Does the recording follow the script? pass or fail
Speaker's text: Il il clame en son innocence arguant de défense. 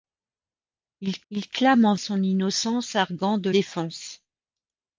pass